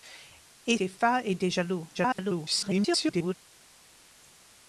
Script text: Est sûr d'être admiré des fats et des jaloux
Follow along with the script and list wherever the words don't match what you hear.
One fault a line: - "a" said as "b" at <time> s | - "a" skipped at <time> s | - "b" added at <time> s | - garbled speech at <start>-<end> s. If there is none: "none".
- "sûr d'être admiré" skipped at 0.8 s
- garbled speech at 1.9-3.4 s